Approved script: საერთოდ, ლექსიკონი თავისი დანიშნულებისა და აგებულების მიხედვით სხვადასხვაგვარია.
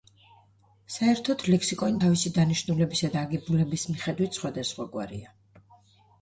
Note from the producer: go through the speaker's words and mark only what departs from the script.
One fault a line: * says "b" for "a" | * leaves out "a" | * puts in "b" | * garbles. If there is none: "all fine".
all fine